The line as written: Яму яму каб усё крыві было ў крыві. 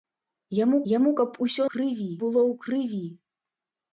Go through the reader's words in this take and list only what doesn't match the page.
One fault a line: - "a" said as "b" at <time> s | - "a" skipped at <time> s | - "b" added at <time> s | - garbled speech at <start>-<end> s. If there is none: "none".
none